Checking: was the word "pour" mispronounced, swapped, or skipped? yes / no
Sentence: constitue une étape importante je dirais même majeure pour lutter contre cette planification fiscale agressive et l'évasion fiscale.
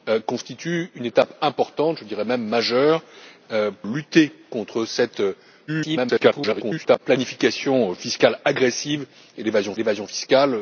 yes